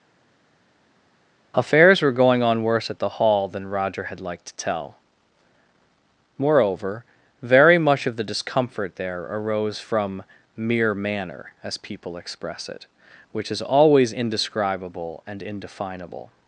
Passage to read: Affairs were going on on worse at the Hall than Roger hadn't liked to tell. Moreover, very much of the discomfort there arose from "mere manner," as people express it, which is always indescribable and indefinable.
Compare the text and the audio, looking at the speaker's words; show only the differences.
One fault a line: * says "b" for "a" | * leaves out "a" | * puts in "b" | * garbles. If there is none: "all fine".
* leaves out "on"
* says "had" for "hadn't"